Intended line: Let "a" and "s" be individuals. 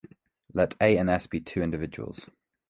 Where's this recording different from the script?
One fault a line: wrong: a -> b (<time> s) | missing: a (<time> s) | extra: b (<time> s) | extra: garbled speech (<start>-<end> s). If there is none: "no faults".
extra: two (1.4 s)